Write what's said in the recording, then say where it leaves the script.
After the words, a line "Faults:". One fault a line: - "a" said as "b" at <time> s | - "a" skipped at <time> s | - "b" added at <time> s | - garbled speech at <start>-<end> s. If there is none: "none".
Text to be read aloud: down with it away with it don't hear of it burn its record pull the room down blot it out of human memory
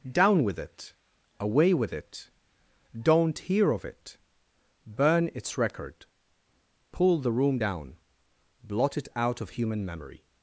down with it away with it don't hear of it burn its record pull the room down blot it out of human memory
Faults:
none